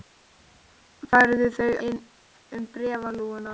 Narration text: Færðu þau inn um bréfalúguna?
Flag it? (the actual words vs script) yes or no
no